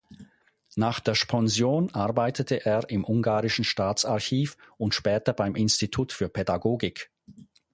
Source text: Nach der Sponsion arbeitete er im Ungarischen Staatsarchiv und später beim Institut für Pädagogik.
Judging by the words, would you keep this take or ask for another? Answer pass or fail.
pass